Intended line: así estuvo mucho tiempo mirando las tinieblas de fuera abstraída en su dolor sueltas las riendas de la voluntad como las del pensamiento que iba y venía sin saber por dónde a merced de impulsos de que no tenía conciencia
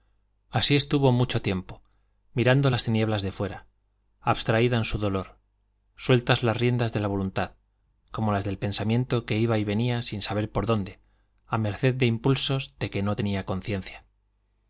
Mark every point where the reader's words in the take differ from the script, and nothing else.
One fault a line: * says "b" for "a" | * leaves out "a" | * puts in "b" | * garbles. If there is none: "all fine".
all fine